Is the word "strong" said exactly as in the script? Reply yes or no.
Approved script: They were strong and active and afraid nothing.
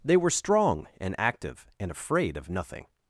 yes